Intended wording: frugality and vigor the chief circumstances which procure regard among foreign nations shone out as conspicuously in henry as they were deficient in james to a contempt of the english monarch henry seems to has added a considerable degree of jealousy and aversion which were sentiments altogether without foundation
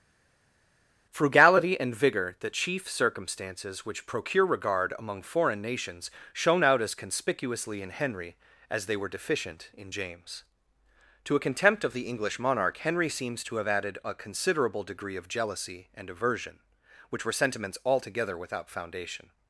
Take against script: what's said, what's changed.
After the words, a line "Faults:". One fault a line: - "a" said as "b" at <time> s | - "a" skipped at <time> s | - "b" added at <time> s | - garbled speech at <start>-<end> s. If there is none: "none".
frugality and vigor the chief circumstances which procure regard among foreign nations shone out as conspicuously in henry as they were deficient in james to a contempt of the english monarch henry seems to have added a considerable degree of jealousy and aversion which were sentiments altogether without foundation
Faults:
- "has" said as "have" at 13.6 s